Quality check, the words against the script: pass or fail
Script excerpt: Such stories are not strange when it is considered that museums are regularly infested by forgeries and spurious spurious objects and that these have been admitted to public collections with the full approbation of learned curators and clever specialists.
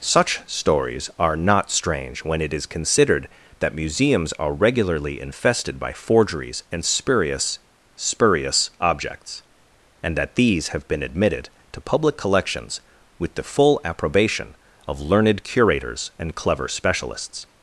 pass